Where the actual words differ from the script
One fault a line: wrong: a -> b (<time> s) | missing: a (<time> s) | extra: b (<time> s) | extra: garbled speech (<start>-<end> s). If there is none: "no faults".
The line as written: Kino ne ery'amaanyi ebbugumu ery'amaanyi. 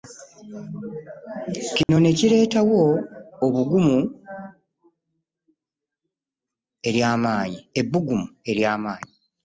wrong: ery'amaanyi -> kireetawo (2.2 s)